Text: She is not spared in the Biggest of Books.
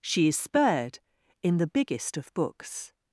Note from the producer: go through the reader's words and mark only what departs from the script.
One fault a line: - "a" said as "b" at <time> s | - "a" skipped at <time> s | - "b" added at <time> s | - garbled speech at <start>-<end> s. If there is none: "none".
- "not" skipped at 0.4 s